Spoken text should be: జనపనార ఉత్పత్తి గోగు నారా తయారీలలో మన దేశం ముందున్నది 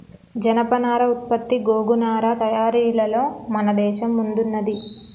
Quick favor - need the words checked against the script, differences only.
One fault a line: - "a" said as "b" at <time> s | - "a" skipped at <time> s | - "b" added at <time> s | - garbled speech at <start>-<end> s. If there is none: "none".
none